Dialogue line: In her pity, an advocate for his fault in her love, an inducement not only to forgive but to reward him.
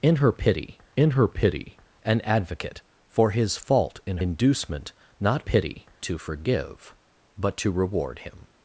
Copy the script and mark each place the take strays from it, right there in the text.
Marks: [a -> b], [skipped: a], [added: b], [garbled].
In her pity, [added: in her pity] an advocate for his fault in [skipped: her love, an] inducement not [only -> pity] to forgive but to reward him.